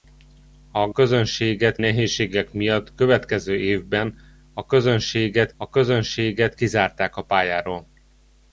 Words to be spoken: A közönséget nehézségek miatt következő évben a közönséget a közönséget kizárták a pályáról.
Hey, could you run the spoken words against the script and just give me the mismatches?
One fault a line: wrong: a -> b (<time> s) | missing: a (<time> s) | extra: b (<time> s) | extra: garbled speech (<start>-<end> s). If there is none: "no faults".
no faults